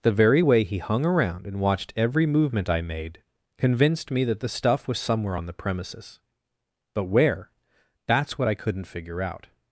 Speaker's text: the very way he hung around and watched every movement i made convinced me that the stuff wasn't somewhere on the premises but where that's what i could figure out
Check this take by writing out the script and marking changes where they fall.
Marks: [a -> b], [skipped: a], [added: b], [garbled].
the very way he hung around and watched every movement i made convinced me that the stuff [wasn't -> was] somewhere on the premises but where that's what i [could -> couldn't] figure out